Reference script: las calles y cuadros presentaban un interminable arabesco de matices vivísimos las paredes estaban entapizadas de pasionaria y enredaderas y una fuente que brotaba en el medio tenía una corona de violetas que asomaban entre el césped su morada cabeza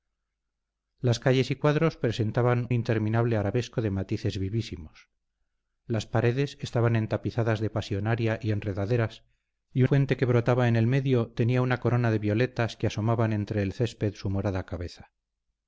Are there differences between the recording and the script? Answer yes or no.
yes